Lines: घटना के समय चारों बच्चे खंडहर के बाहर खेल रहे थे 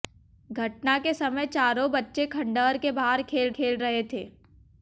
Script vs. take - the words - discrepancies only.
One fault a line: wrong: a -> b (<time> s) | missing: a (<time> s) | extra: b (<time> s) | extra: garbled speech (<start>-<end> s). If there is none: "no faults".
extra: खेल (3.5 s)